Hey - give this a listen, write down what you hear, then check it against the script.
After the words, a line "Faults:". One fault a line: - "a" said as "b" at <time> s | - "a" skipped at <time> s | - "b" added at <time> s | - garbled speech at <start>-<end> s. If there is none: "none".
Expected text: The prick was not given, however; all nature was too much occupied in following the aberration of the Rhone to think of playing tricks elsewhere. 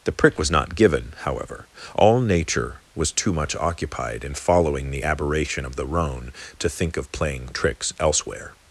The prick was not given, however; all nature was too much occupied in following the aberration of the Rhone to think of playing tricks elsewhere.
Faults:
none